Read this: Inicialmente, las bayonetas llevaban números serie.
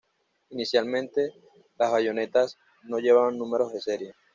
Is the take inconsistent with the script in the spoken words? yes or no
yes